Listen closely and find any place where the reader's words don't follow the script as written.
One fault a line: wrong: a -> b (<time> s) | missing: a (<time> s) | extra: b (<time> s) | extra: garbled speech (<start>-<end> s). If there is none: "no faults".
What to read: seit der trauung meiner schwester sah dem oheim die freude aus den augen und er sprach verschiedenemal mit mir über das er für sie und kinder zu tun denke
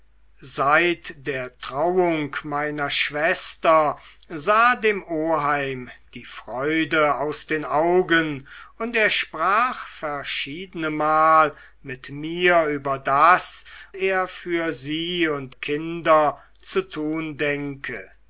no faults